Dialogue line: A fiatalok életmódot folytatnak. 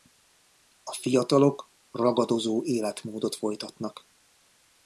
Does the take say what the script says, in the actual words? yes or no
no